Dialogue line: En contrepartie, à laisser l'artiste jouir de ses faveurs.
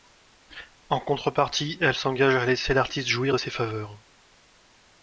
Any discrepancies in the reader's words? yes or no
yes